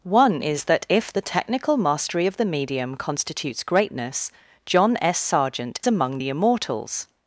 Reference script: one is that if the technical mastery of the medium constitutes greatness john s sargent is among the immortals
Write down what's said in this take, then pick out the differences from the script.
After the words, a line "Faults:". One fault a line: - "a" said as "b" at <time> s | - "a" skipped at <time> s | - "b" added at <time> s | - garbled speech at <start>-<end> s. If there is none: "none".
one is that if the technical mastery of the medium constitutes greatness john s sargent among the immortals
Faults:
- "is" skipped at 5.8 s